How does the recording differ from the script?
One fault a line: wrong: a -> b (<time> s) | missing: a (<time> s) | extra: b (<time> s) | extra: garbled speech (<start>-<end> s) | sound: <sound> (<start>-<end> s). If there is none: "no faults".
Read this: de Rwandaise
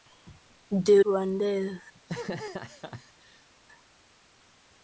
sound: laugh (1.9-3.5 s)